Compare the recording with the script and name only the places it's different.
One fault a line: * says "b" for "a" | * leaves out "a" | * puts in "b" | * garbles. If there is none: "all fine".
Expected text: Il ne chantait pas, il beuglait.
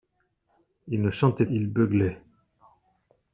* leaves out "pas"